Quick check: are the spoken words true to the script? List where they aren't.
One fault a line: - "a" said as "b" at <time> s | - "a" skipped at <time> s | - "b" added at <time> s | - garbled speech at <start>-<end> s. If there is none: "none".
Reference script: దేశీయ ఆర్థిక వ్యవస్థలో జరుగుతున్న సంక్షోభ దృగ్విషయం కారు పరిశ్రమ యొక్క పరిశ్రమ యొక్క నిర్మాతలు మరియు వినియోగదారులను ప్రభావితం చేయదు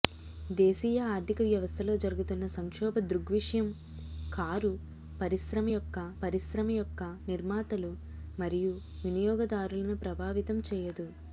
none